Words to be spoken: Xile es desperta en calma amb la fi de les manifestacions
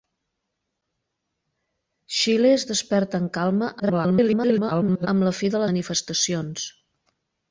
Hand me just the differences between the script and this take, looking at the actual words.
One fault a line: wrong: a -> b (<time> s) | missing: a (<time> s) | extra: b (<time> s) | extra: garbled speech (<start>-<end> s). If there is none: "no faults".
extra: garbled speech (3.8-5.1 s)
missing: les (5.6 s)